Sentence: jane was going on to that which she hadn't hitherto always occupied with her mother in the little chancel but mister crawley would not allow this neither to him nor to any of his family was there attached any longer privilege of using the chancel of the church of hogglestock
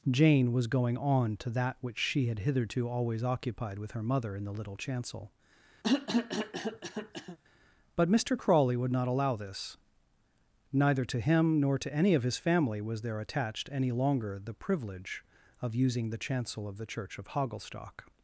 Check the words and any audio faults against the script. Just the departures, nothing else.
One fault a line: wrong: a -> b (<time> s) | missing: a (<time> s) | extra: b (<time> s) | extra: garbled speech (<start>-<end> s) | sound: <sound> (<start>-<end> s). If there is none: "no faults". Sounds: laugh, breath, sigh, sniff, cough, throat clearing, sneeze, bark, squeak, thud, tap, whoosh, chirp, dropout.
wrong: hadn't -> had (2.2 s)
sound: cough (5.8-7.4 s)
extra: the (14.4 s)